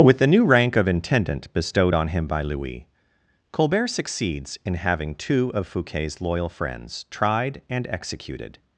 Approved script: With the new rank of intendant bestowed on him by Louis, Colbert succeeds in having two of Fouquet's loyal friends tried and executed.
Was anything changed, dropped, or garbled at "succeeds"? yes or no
no